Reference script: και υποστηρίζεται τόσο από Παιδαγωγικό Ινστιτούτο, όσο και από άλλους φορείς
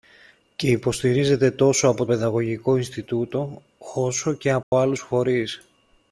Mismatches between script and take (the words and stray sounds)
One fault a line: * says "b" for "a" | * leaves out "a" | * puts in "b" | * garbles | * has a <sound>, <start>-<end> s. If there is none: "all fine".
* has a dropout, 4.6-4.7 s